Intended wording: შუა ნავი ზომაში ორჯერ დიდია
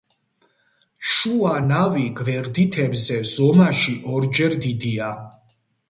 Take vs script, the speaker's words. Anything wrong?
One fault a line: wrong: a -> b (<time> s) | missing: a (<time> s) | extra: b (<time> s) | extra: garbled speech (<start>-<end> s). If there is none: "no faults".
extra: გვერდითებზე (2.2 s)